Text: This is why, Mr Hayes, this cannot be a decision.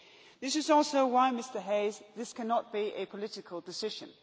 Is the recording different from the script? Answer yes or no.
yes